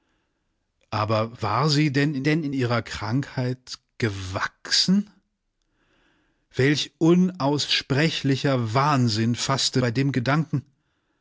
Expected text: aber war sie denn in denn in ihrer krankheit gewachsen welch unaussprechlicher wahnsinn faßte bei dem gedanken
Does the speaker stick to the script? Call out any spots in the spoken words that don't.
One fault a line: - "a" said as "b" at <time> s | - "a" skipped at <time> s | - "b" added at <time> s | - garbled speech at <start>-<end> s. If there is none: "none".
none